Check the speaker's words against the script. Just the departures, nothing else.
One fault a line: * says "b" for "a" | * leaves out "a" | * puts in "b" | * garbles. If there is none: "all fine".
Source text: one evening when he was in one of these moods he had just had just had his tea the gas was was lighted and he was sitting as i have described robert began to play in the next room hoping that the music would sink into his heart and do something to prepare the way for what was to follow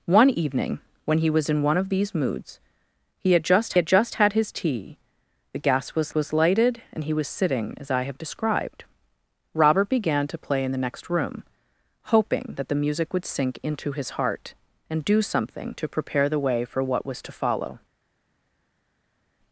all fine